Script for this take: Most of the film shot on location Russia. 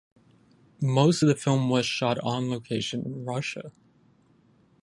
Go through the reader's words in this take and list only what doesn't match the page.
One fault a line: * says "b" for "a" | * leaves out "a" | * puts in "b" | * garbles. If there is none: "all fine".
* puts in "was"
* puts in "in"